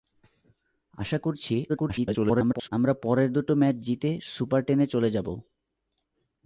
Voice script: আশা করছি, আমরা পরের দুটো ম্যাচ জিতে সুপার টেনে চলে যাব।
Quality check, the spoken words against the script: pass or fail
fail